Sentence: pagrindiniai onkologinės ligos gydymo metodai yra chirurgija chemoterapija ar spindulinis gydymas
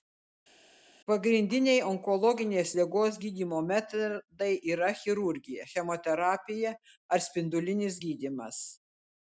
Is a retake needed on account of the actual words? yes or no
no